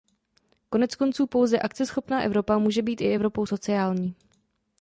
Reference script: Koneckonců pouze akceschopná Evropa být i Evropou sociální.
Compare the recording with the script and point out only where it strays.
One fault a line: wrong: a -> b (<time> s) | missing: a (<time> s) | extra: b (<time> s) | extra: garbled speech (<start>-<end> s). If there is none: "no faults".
extra: může (2.6 s)